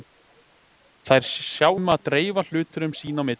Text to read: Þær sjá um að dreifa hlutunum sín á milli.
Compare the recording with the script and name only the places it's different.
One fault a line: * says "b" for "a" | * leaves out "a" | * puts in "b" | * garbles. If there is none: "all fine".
all fine